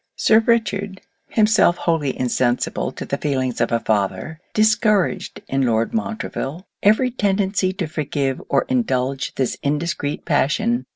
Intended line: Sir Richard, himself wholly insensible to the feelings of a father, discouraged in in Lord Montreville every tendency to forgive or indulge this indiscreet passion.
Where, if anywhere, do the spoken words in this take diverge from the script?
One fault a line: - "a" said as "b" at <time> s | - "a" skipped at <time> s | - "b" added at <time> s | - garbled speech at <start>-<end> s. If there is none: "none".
- "in" skipped at 5.7 s